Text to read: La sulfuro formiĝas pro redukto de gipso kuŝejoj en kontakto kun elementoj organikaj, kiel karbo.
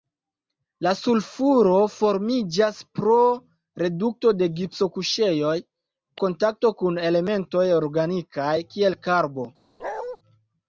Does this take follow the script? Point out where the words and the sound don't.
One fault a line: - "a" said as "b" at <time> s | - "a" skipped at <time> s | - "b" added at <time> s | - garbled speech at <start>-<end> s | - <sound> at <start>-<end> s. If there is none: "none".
- "en" skipped at 5.5 s
- bark at 9.8-10.2 s